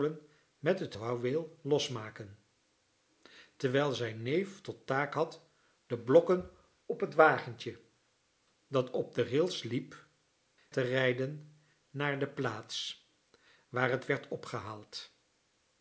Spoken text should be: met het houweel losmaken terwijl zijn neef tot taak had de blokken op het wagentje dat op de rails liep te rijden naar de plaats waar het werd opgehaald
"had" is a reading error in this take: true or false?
false